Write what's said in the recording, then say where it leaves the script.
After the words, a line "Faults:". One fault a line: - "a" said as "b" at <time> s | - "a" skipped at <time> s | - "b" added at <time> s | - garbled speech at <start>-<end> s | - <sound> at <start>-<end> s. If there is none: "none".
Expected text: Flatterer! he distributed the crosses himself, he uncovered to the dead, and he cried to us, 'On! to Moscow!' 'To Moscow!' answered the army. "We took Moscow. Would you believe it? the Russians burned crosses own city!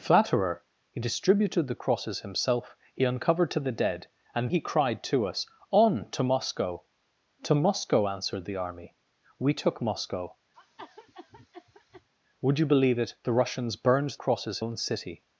Flatterer! he distributed the crosses himself, he uncovered to the dead, and he cried to us, 'On! to Moscow!' 'To Moscow!' answered the army. "We took Moscow. Would you believe it? the Russians burned crosses own city!
Faults:
- cough at 10.5-12.1 s